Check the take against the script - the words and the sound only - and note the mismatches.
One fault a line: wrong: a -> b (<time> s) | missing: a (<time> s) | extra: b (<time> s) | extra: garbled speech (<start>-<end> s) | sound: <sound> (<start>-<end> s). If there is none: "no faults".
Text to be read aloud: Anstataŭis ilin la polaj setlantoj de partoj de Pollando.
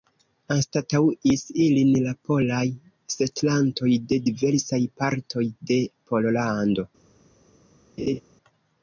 extra: diversaj (4.3 s)
sound: laugh (8.0-8.2 s)